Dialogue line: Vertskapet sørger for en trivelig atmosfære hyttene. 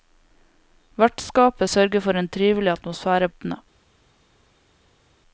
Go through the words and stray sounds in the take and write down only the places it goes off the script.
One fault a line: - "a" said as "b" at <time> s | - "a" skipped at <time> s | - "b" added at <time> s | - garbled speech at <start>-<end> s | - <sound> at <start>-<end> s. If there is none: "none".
none